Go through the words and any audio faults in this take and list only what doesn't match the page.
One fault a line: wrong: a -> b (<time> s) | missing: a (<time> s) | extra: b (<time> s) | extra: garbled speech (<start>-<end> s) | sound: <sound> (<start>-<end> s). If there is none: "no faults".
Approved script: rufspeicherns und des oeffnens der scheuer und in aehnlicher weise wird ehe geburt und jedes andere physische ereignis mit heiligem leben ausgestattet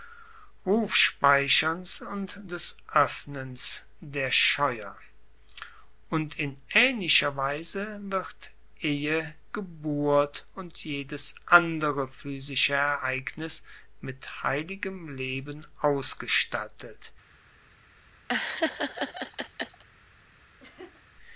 sound: laugh (18.3-19.8 s)
sound: laugh (20.6-21.0 s)